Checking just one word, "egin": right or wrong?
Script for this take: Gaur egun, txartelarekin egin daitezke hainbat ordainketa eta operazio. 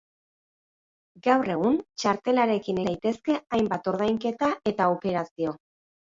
wrong